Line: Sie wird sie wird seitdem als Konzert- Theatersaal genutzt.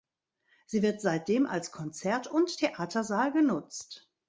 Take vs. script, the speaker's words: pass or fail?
fail